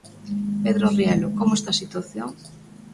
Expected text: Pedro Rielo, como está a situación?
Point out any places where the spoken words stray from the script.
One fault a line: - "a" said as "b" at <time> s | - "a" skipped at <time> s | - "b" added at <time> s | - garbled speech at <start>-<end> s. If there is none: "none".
none